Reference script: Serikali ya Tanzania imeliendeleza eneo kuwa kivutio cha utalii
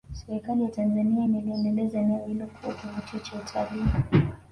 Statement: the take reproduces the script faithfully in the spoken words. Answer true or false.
false